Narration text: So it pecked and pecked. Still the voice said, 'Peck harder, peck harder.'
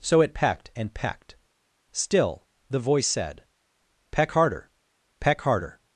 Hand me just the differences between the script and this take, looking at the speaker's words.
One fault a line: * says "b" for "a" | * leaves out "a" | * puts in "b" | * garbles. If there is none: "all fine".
all fine